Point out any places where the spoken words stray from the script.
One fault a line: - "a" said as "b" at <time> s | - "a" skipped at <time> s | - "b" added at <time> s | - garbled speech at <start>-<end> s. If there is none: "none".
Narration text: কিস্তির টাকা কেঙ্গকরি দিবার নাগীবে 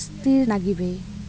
- "টাকা কেঙ্গকরি দিবার" skipped at 0.4 s